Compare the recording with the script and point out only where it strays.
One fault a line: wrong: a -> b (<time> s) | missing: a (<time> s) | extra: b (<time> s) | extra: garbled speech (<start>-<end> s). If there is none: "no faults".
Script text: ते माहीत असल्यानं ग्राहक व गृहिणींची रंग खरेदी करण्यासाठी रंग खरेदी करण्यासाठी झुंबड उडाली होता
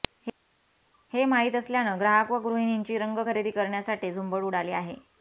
wrong: ते -> हे (1.1 s)
missing: रंग खरेदी करण्यासाठी (4.1 s)
wrong: होता -> आहे (4.7 s)